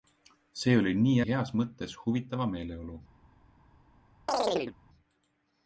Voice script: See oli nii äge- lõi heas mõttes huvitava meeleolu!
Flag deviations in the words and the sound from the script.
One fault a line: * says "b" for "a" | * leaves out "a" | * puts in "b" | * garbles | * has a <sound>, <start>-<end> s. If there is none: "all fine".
* leaves out "äge lõi"
* has a chirp, 4.3-4.8 s